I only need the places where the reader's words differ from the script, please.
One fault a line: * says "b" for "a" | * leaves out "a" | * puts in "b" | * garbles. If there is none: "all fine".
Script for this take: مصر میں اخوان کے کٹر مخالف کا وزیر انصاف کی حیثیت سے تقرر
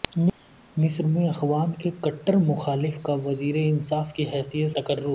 * leaves out "سے"